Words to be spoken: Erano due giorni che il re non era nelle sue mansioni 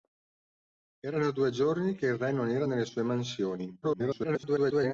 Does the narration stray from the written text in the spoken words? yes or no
yes